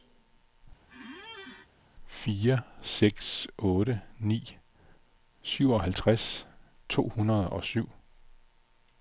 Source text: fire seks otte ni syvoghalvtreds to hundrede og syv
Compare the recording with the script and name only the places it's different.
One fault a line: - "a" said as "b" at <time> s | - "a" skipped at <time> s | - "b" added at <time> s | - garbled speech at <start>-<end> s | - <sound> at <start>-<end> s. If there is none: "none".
- squeak at 0.9-1.7 s